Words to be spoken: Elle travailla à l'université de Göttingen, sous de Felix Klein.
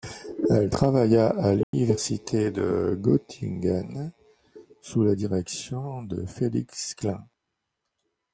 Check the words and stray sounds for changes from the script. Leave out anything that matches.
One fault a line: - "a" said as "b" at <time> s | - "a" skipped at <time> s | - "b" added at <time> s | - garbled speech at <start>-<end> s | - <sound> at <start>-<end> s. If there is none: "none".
- dropout at 1.6-1.7 s
- "la direction" added at 5.0 s